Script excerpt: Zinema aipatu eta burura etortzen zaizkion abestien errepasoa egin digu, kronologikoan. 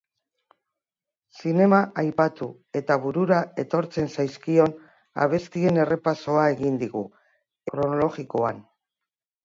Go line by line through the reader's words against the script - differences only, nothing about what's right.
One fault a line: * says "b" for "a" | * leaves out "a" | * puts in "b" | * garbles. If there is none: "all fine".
all fine